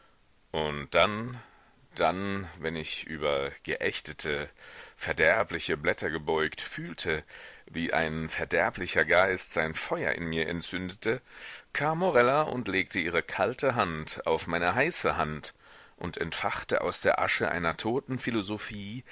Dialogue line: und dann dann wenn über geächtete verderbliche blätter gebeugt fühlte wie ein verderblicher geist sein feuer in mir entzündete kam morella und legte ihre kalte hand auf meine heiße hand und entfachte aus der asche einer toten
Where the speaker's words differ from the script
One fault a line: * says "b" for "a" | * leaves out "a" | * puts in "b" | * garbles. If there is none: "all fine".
* puts in "ich"